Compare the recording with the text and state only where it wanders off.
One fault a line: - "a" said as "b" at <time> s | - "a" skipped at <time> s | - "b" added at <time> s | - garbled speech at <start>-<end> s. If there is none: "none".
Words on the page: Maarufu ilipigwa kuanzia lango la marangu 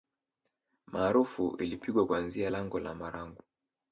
none